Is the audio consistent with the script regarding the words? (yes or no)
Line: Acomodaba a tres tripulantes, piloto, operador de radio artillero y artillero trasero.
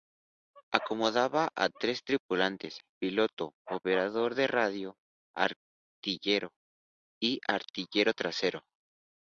yes